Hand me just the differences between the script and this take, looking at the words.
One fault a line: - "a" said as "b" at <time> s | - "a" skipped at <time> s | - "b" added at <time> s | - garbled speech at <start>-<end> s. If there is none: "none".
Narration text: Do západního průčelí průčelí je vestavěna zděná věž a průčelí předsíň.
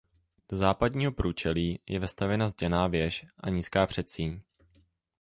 - "průčelí" skipped at 1.8 s
- "průčelí" said as "nízká" at 3.5 s